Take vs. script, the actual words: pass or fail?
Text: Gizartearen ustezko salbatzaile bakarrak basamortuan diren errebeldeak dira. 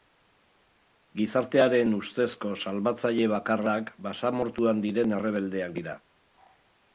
pass